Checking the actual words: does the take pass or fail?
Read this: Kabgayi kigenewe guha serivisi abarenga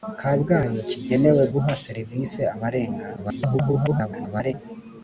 fail